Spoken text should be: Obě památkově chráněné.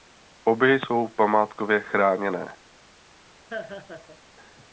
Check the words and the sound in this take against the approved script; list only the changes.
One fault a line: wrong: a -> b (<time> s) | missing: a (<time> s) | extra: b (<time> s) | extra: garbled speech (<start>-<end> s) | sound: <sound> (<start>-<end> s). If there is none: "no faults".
extra: jsou (0.8 s)
sound: laugh (3.5-4.2 s)